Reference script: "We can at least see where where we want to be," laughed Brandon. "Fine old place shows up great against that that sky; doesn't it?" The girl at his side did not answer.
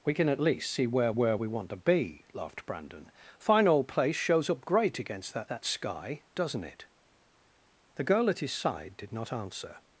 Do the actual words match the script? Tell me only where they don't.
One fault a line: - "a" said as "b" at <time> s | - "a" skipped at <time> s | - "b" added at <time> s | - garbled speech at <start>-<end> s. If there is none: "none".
none